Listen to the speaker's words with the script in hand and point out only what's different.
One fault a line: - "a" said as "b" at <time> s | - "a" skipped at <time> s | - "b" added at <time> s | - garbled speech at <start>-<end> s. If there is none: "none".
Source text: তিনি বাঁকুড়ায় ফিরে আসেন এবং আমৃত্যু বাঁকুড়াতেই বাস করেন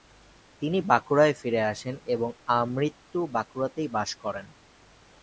none